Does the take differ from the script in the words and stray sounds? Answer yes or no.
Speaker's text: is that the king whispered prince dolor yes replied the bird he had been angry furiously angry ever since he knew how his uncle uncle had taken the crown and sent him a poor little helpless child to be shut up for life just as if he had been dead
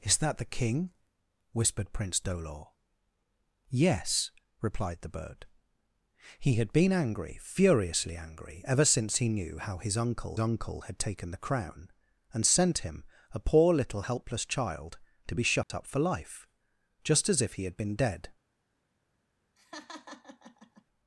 yes